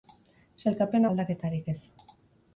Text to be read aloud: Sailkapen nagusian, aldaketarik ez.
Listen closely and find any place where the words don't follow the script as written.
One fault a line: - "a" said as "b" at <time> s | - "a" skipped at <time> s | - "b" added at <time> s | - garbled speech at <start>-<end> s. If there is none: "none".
- "nagusian" skipped at 1.1 s